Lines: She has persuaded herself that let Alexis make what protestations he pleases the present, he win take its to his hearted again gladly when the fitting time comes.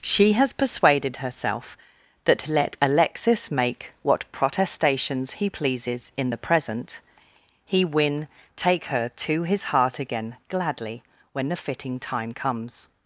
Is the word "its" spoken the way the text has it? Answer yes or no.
no